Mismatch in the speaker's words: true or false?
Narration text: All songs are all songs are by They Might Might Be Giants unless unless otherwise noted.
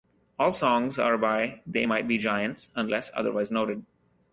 true